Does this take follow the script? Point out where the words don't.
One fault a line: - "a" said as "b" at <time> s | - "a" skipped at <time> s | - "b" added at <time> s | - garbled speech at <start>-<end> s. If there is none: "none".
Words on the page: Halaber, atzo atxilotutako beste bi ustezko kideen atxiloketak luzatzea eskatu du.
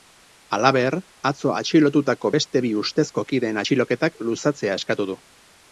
none